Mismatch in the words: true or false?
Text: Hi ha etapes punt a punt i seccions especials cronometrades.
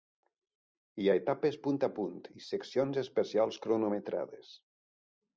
false